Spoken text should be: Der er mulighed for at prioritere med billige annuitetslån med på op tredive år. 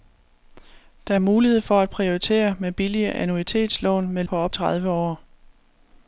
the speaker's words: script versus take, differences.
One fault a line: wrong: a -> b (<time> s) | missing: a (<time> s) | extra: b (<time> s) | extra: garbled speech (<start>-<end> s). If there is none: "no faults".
no faults